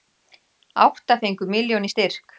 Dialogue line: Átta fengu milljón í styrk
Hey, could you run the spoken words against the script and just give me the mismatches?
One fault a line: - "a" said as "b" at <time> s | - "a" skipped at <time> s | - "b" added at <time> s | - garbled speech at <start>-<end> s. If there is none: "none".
none